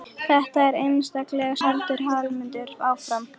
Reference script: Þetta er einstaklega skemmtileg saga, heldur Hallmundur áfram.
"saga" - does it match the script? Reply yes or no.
no